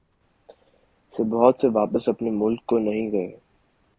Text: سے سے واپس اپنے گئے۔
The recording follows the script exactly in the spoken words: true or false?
false